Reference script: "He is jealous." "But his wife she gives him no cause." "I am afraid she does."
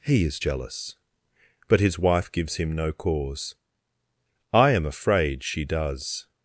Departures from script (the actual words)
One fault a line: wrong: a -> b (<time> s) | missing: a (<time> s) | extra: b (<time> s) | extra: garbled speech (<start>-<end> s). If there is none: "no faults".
missing: she (2.3 s)